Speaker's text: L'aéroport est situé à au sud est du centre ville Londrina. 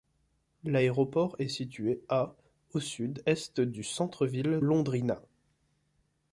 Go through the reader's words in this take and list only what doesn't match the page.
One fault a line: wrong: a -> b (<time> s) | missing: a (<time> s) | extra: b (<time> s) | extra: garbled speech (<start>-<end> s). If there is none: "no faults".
no faults